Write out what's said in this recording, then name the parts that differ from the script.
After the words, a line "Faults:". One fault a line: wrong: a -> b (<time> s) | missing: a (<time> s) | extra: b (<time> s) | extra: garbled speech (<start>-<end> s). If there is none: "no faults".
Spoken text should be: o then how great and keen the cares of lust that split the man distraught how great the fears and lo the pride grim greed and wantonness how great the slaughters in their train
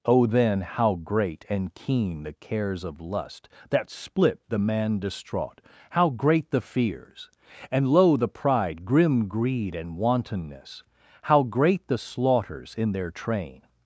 o then how great and keen the cares of lust that split the man distraught how great the fears and lo the pride grim greed and wantonness how great the slaughters in their train
Faults:
no faults